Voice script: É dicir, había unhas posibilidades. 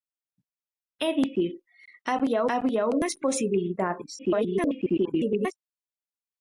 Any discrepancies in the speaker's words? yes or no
yes